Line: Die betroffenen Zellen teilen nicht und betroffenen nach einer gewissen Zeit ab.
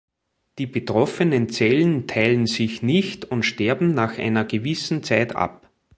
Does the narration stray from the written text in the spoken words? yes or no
yes